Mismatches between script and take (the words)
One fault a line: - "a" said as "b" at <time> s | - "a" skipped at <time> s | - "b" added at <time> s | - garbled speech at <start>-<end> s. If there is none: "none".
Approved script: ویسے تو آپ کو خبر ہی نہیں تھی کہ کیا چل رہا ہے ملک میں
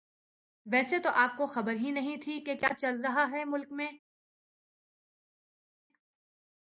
none